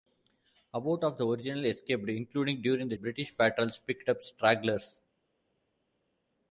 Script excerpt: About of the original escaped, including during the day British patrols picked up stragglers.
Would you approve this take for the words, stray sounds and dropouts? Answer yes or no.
no